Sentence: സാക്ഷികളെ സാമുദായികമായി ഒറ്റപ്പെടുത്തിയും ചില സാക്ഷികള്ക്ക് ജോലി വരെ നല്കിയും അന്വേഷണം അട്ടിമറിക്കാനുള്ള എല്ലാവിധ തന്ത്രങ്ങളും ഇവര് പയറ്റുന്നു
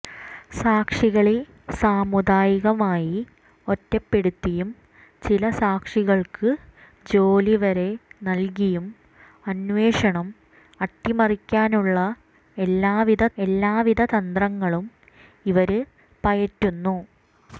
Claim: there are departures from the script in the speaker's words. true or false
true